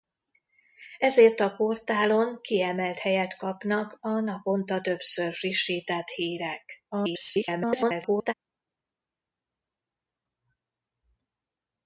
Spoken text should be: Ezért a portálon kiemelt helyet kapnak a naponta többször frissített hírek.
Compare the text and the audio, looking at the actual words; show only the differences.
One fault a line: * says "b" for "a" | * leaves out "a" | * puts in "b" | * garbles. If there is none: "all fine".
* garbles